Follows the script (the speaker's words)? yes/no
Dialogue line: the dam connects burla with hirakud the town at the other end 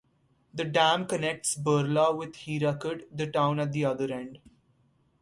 yes